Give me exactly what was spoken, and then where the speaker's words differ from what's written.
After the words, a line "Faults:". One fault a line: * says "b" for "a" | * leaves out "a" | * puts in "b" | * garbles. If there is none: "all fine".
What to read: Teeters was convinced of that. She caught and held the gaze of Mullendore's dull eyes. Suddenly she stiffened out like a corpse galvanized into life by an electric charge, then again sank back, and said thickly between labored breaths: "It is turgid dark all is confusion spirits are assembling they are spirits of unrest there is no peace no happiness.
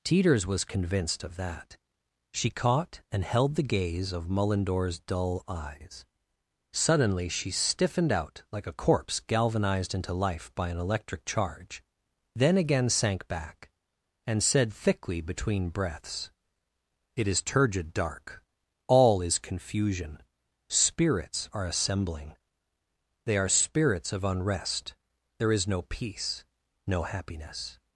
Teeters was convinced of that. She caught and held the gaze of Mullendore's dull eyes. Suddenly she stiffened out like a corpse galvanized into life by an electric charge, then again sank back, and said thickly between breaths: "It is turgid dark all is confusion spirits are assembling they are spirits of unrest there is no peace no happiness.
Faults:
* leaves out "labored"